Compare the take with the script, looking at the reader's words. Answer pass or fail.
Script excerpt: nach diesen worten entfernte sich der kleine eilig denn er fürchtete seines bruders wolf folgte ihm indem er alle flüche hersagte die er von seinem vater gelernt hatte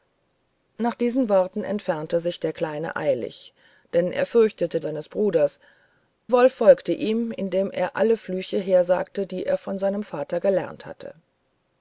pass